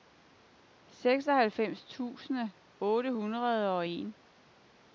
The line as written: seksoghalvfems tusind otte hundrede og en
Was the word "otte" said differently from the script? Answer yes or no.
no